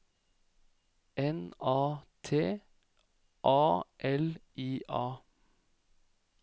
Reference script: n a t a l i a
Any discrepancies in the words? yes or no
no